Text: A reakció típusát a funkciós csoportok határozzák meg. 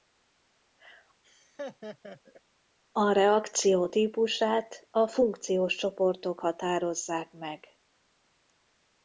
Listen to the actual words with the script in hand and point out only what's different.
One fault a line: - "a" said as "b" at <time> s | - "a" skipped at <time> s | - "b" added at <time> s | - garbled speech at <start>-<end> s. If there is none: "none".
none